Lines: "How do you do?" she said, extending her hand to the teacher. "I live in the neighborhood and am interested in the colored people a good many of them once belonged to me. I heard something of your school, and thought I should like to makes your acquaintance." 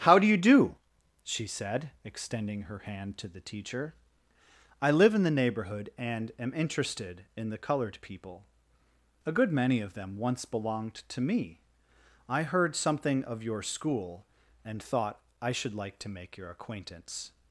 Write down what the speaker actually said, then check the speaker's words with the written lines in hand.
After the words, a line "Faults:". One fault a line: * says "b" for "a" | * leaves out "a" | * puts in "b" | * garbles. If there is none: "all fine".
"How do you do?" she said, extending her hand to the teacher. "I live in the neighborhood and am interested in the colored people a good many of them once belonged to me. I heard something of your school, and thought I should like to make your acquaintance."
Faults:
* says "make" for "makes"